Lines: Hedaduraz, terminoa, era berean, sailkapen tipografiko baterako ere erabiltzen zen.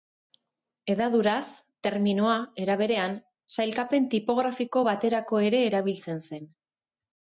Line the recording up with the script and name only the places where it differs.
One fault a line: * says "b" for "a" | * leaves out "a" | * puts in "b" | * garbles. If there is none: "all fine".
all fine